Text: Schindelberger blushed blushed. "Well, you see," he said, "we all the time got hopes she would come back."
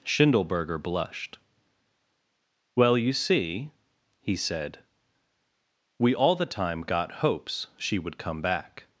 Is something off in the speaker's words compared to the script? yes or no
yes